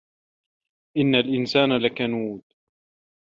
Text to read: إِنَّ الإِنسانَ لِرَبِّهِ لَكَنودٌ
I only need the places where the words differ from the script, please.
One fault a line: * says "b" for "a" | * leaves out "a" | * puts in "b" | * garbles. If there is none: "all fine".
* leaves out "لِرَبِّهِ"